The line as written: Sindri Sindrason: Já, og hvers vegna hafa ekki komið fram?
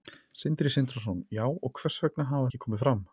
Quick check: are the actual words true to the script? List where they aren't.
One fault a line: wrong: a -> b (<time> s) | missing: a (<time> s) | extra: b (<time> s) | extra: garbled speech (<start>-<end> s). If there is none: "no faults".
no faults